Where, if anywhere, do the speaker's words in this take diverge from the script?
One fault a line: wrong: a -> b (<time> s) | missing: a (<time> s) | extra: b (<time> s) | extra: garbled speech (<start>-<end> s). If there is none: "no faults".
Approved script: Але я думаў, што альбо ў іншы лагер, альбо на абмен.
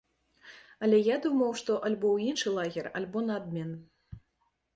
no faults